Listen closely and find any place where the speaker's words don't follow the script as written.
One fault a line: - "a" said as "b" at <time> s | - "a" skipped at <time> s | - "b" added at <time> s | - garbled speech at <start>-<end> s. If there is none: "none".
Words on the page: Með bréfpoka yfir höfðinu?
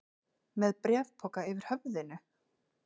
none